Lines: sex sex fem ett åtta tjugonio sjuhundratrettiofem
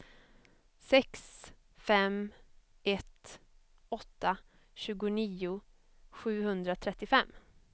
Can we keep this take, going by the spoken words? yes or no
no